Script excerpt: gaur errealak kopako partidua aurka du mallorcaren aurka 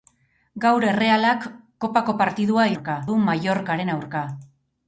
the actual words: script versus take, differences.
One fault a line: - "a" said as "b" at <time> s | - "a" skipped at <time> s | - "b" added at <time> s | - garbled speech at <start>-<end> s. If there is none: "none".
none